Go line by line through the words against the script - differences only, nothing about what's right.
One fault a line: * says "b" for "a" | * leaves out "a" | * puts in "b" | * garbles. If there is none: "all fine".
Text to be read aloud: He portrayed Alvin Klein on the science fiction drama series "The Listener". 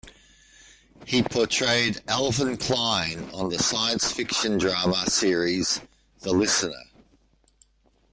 all fine